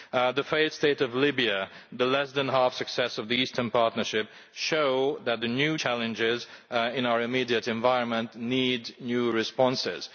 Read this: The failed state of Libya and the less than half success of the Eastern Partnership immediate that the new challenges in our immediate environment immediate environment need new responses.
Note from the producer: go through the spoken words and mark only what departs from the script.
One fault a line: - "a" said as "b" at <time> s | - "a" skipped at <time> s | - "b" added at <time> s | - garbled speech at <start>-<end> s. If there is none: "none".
- "immediate" said as "show" at 4.5 s
- "immediate environment" skipped at 8.4 s